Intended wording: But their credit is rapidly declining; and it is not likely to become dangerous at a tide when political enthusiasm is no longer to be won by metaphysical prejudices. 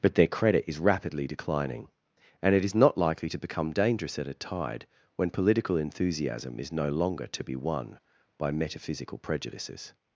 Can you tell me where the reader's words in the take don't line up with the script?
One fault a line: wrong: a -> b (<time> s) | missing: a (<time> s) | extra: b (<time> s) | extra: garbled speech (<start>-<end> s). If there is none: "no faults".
no faults